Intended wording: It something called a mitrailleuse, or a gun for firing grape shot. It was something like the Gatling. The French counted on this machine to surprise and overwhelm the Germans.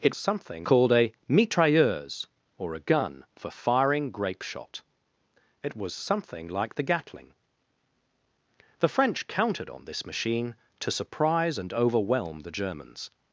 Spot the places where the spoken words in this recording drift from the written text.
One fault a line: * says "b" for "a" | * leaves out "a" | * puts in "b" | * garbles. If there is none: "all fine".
all fine